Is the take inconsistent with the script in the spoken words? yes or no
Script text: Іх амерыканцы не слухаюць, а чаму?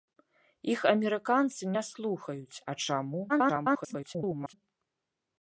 yes